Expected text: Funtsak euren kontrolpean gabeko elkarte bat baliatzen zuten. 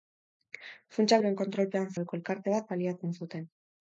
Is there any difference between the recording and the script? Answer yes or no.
no